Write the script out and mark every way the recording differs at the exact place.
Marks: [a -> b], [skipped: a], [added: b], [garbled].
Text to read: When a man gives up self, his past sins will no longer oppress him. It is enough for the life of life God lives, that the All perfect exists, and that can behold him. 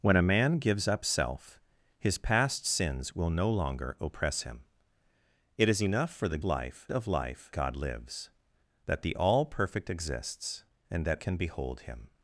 When a man gives up self, his past sins will no longer oppress him. It is enough for the life of life God lives, that the All perfect exists, and that can behold him.